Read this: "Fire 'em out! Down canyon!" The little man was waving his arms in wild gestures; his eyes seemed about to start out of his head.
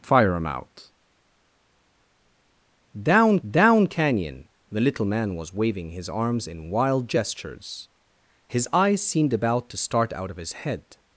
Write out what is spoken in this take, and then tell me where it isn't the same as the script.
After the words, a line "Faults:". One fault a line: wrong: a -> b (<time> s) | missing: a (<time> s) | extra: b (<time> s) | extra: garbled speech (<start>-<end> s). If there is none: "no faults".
"Fire 'em out! Down down canyon!" The little man was waving his arms in wild gestures; his eyes seemed about to start out of his head.
Faults:
extra: down (3.5 s)